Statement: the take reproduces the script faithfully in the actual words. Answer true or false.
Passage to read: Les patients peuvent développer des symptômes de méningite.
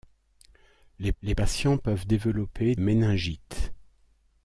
false